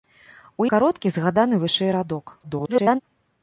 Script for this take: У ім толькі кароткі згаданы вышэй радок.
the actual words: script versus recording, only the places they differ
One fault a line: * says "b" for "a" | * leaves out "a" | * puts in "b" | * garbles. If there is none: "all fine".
* leaves out "ім толькі"
* garbles